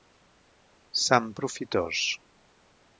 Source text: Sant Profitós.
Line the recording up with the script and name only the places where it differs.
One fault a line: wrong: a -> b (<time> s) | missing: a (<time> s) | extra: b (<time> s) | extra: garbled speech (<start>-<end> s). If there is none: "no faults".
no faults